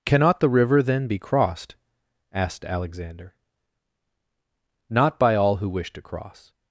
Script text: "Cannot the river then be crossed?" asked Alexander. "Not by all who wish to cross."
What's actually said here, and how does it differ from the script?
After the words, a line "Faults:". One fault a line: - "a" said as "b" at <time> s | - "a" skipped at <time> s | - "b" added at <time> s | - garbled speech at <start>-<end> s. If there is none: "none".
"Cannot the river then be crossed?" asked Alexander. "Not by all who wish to cross."
Faults:
none